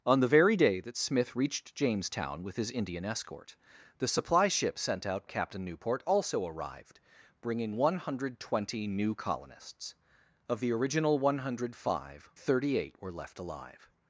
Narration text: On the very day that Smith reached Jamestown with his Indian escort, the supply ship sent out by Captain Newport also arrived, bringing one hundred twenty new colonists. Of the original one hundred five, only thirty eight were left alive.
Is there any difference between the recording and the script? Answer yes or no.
yes